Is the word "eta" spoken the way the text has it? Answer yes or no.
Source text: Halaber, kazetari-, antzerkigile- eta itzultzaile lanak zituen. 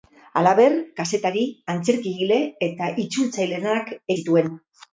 yes